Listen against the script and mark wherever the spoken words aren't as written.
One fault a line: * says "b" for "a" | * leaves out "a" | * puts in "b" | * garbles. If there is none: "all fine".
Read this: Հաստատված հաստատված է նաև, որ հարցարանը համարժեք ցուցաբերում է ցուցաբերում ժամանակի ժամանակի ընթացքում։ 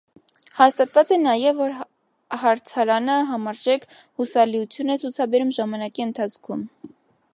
* leaves out "հաստատված"
* says "հուսալիություն" for "ցուցաբերում"
* leaves out "ժամանակի"